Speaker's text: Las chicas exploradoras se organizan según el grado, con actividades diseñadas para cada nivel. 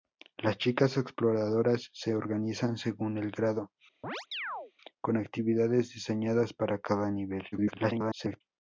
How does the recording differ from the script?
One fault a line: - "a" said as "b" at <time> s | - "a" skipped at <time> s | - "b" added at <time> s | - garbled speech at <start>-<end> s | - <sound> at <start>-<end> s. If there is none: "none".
- chirp at 4.0-4.7 s
- garbled speech at 7.5-8.4 s